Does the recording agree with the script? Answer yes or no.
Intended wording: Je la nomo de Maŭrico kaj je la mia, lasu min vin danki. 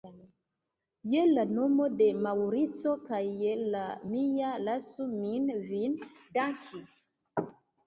yes